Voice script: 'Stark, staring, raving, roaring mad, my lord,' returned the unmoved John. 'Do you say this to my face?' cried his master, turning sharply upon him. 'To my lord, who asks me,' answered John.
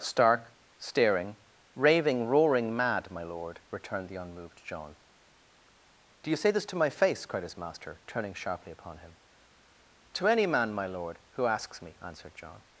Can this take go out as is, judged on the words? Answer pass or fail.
fail